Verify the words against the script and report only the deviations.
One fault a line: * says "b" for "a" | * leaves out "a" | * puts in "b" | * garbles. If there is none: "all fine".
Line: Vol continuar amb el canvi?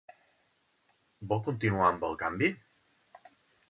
all fine